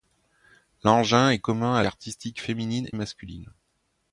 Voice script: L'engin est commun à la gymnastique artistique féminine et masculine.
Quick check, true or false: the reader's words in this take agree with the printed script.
false